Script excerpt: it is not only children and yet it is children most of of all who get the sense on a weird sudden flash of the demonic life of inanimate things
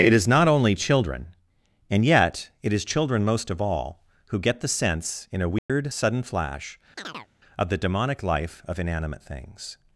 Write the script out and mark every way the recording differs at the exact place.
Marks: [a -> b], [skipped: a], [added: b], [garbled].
it is not only children and yet it is children most of [skipped: of] all who get the sense [on -> in] a weird sudden flash of the demonic life of inanimate things